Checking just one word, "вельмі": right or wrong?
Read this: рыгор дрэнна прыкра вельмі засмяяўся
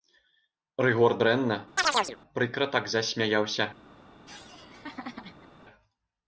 wrong